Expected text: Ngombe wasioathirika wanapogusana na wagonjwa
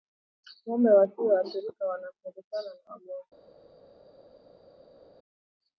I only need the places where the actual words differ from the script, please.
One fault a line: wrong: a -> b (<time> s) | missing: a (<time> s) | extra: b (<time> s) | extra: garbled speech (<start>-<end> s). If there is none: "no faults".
no faults